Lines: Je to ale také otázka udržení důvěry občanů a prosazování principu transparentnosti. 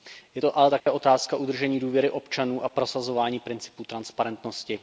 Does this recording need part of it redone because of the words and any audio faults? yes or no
yes